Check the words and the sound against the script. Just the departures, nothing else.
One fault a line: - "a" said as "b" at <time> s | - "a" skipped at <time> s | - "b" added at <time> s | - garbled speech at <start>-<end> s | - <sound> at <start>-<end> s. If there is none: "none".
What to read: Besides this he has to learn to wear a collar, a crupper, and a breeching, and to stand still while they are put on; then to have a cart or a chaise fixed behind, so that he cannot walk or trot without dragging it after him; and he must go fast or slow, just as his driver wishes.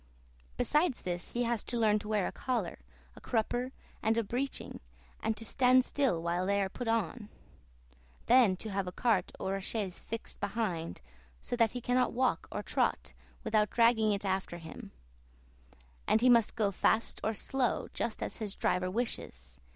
none